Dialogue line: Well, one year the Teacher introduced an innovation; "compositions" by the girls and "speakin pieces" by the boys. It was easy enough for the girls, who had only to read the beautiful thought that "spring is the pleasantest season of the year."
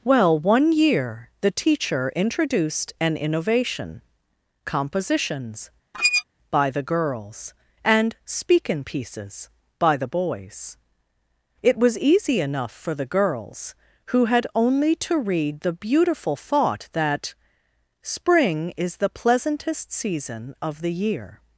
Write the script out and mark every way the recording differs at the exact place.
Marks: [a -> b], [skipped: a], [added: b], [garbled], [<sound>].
Well, one year the Teacher introduced an innovation; "compositions" [squeak] by the girls and "speakin pieces" by the boys. It was easy enough for the girls, who had only to read the beautiful thought that "spring is the pleasantest season of the year."